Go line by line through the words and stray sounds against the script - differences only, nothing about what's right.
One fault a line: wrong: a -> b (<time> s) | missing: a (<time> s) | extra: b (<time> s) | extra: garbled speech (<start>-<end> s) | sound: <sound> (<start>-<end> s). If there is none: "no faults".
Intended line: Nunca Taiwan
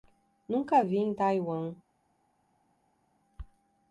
extra: vi em (0.8 s)